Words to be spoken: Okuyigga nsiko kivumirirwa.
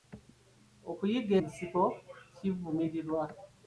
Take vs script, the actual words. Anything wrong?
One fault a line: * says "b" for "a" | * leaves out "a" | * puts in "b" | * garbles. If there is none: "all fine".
all fine